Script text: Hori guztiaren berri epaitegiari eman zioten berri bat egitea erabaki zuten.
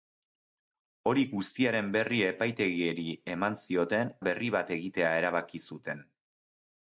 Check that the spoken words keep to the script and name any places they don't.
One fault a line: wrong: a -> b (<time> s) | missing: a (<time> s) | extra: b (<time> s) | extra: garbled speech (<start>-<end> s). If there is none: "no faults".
no faults